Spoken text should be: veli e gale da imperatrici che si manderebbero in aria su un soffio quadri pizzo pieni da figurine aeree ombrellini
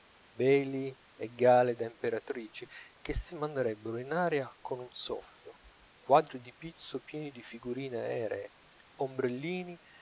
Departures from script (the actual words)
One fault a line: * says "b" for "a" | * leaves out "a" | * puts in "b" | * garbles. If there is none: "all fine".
* says "con" for "su"
* puts in "di"
* says "di" for "da"